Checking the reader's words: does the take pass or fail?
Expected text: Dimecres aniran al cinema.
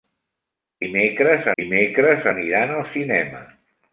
fail